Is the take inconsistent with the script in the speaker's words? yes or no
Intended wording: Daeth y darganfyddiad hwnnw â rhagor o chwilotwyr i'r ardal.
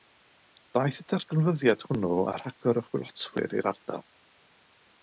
no